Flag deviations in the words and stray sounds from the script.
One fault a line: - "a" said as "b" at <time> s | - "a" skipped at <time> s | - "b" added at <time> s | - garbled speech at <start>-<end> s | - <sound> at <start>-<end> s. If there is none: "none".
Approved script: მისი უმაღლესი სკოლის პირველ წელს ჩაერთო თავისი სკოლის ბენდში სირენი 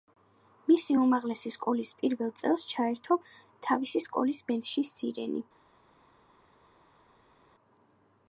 none